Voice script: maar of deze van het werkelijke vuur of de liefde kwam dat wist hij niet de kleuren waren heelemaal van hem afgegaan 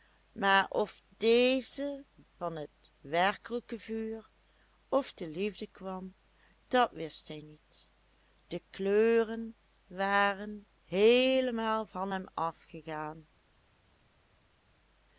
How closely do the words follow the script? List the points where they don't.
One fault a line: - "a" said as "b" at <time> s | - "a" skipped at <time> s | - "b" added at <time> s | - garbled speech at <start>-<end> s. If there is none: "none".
none